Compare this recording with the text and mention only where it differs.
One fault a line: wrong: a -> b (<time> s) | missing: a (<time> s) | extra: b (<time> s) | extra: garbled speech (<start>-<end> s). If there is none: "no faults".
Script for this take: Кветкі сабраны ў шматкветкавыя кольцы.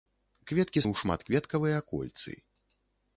missing: сабраны (0.8 s)